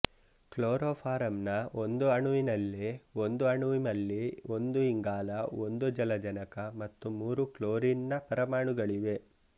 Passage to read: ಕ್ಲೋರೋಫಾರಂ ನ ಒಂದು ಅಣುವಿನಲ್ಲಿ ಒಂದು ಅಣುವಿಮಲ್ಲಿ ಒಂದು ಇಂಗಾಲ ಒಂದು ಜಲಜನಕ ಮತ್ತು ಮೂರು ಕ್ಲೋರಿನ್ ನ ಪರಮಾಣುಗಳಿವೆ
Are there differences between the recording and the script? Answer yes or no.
no